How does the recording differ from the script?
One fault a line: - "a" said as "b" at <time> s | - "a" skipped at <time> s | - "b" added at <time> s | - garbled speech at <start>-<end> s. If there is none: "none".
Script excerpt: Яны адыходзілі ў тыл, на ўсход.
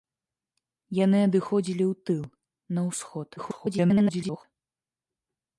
- garbled speech at 3.4-4.4 s